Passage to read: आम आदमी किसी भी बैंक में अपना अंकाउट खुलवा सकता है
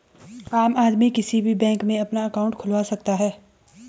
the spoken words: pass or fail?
pass